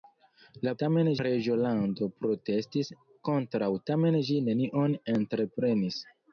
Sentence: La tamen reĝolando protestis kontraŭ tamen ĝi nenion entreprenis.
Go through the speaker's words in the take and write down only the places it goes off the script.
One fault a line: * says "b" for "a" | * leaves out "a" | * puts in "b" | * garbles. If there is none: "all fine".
all fine